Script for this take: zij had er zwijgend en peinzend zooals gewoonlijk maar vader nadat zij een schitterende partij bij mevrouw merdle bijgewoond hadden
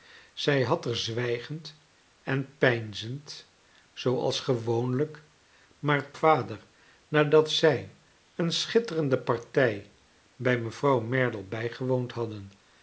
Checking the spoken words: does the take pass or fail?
pass